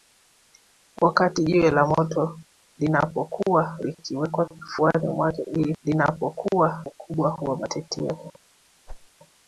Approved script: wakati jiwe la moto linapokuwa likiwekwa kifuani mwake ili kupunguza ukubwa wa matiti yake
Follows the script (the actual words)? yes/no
no